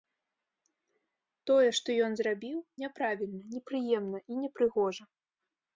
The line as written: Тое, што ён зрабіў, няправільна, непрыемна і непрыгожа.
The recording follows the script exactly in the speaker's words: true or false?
true